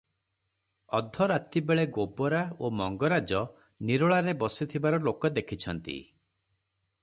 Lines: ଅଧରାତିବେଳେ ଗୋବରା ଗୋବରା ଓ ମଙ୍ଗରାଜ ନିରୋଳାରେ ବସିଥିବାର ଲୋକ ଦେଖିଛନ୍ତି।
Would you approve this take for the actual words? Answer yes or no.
no